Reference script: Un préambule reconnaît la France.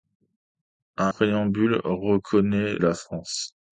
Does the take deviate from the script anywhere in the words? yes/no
no